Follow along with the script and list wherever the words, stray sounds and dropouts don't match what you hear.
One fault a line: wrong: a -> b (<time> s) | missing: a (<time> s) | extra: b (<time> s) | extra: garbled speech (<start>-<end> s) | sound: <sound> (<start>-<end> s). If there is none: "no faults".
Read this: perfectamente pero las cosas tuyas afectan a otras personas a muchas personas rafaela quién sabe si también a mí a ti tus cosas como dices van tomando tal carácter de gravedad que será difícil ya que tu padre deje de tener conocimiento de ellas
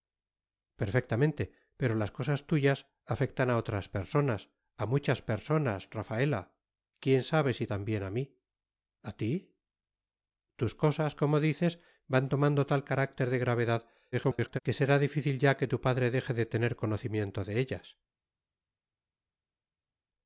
extra: garbled speech (14.1-14.6 s)